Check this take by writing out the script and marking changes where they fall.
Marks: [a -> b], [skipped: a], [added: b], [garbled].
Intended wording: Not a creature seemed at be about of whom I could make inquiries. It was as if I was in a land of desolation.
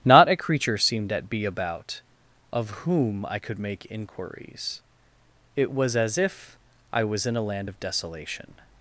Not a creature seemed at be about of whom I could make inquiries. It was as if I was in a land of desolation.